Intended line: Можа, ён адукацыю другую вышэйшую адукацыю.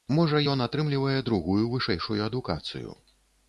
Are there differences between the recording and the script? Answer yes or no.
yes